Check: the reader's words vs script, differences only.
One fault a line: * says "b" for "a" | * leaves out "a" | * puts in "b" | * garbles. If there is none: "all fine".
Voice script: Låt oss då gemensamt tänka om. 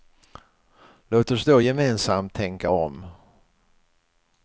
all fine